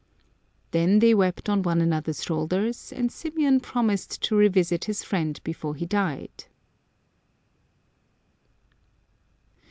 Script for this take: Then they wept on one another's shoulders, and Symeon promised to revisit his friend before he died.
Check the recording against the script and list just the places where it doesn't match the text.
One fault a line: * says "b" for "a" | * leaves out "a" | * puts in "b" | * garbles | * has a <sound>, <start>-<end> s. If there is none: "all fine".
all fine